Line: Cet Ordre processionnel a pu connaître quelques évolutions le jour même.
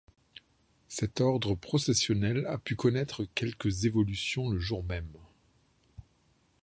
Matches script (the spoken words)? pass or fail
pass